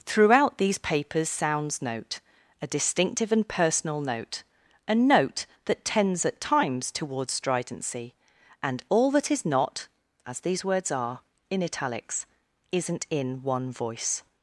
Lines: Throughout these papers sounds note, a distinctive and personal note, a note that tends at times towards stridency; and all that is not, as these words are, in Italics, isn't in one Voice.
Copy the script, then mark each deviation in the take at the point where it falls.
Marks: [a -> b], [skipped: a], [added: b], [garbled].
Throughout these papers sounds note, a distinctive and personal note, a note that tends at times towards stridency; and all that is not, as these words are, in Italics, isn't in one Voice.